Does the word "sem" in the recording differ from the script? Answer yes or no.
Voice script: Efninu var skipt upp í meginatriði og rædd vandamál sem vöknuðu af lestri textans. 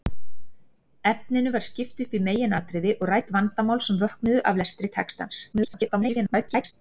no